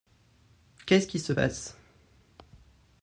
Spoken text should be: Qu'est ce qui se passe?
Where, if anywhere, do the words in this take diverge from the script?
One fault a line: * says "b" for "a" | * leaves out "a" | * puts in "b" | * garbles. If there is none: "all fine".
all fine